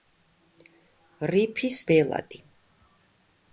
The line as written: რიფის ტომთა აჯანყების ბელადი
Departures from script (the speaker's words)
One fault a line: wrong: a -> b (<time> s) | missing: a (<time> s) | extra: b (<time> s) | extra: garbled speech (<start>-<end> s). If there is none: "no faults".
missing: ტომთა აჯანყების (1.8 s)